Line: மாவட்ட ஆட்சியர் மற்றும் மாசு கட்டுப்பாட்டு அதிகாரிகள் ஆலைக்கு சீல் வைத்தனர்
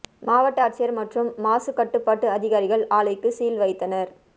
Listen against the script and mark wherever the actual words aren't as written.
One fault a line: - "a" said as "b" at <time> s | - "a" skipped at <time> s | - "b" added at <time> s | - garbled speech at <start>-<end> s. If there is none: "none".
none